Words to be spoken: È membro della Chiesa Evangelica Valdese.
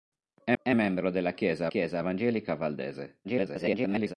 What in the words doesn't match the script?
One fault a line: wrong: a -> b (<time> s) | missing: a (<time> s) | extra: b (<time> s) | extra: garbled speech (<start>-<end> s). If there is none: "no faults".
extra: è (0.6 s)
extra: Chiesa (1.7 s)
extra: garbled speech (3.2-4.1 s)